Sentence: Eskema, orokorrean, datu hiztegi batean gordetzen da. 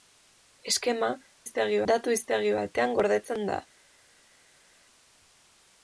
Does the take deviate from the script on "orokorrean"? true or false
true